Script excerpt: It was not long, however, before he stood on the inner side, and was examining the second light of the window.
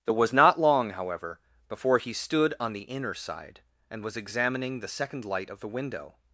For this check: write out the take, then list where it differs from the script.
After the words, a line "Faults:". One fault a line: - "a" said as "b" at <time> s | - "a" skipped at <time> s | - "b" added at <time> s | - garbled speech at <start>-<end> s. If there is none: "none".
It was not long, however, before he stood on the inner side, and was examining the second light of the window.
Faults:
none